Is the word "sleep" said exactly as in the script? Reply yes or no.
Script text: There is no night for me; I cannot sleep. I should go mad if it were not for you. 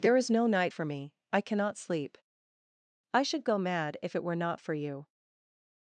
yes